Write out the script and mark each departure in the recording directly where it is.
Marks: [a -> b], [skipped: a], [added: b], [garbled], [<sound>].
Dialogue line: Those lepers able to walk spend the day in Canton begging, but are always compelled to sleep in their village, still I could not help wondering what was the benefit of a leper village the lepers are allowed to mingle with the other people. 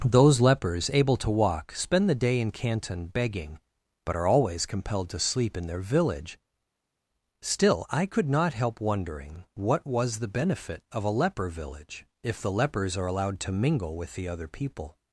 Those lepers able to walk spend the day in Canton begging, but are always compelled to sleep in their village, still I could not help wondering what was the benefit of a leper village [added: if] the lepers are allowed to mingle with the other people.